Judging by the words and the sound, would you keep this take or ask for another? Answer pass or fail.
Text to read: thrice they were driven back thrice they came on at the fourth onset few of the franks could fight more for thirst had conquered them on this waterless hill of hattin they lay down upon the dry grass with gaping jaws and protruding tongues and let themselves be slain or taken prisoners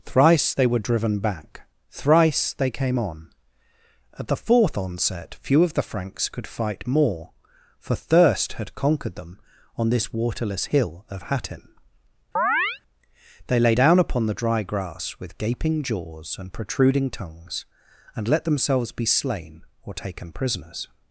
fail